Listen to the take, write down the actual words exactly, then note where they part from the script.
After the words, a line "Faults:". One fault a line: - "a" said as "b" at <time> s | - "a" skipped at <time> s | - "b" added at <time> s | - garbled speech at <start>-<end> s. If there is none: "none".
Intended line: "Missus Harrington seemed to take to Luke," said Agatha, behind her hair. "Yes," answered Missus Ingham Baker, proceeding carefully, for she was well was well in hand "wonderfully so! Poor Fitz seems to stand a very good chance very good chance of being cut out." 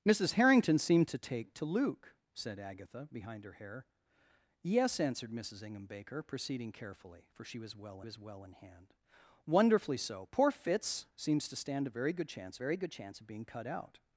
"Missus Harrington seemed to take to Luke," said Agatha, behind her hair. "Yes," answered Missus Ingham Baker, proceeding carefully, for she was well was well in hand "wonderfully so! Poor Fitz seems to stand a very good chance very good chance of being cut out."
Faults:
none